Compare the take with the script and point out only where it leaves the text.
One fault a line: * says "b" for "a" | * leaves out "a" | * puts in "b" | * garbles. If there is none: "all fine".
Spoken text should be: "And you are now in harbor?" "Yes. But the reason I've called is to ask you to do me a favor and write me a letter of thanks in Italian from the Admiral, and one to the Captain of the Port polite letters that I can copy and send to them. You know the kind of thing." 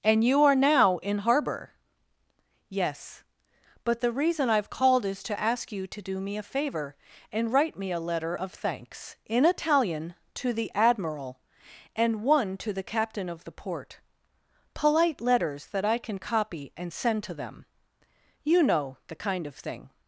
* says "to" for "from"